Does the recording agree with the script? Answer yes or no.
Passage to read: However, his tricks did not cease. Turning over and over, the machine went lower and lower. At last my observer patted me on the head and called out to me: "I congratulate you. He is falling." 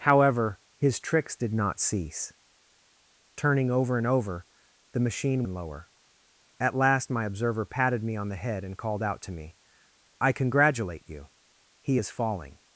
no